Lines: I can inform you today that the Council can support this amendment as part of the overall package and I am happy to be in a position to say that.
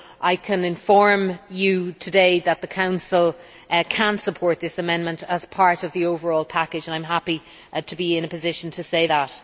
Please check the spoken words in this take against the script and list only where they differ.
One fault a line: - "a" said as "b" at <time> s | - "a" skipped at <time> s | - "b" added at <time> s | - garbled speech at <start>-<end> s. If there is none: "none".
none